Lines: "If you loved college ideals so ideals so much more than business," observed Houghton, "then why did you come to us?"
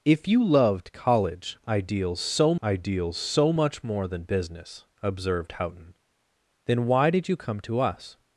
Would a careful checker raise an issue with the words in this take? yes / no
no